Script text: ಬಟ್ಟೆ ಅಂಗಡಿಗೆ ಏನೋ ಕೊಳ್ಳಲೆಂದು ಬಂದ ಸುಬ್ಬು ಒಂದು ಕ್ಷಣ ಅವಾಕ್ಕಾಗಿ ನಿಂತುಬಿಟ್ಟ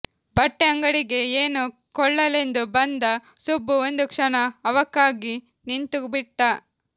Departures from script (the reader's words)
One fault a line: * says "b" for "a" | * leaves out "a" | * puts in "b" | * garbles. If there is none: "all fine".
all fine